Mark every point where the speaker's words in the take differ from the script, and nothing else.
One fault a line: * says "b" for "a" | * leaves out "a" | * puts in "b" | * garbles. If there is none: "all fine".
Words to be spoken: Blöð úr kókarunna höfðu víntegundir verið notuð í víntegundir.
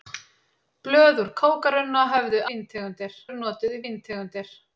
all fine